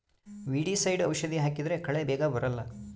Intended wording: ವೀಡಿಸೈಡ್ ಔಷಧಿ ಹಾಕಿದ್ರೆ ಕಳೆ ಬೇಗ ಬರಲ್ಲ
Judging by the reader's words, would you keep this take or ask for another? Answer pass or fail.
pass